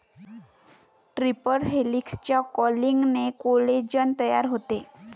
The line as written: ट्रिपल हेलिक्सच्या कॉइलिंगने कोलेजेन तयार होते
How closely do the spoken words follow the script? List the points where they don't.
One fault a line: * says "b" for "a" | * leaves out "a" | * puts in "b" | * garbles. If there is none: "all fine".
all fine